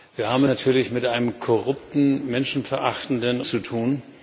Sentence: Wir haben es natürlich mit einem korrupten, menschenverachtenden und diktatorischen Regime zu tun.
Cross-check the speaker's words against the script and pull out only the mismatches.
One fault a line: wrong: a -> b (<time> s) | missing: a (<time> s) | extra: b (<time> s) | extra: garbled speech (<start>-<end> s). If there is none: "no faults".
missing: es (0.4 s)
missing: und diktatorischen Regime (3.4 s)